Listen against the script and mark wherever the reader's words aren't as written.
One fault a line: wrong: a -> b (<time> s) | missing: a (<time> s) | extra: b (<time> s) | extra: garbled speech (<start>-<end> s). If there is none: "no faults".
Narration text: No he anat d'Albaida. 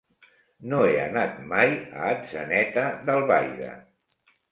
extra: mai a Atzeneta (1.5 s)